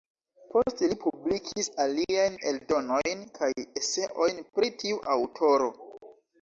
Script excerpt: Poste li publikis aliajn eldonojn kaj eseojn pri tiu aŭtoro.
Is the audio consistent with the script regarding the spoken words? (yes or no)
yes